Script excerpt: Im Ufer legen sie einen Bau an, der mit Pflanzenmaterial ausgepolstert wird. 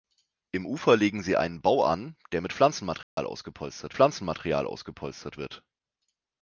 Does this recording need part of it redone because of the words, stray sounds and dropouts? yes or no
yes